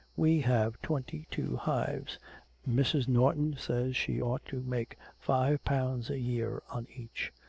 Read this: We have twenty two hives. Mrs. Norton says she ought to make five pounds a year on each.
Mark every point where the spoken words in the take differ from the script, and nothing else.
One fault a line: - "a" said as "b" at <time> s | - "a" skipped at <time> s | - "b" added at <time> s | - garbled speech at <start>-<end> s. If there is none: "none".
none